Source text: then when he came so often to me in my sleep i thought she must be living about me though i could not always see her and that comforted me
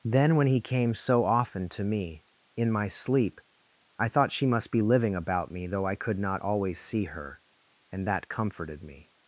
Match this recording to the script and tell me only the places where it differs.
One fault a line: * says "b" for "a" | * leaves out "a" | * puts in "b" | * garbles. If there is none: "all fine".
all fine